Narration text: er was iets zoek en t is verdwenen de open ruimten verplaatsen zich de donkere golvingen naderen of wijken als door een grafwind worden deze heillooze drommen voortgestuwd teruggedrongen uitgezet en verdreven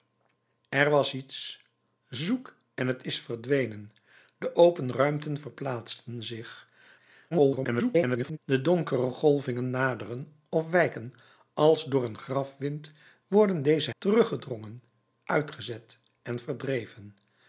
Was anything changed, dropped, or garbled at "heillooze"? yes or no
yes